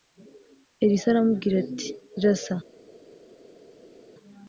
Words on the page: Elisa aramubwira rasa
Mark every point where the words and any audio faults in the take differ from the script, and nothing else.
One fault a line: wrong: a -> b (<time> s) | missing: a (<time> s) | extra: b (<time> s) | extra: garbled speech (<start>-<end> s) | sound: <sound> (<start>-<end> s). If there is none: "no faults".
extra: ati (1.6 s)